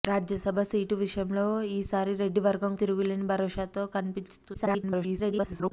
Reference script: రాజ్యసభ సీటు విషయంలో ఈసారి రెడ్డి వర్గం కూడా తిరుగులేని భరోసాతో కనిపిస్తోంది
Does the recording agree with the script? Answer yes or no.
no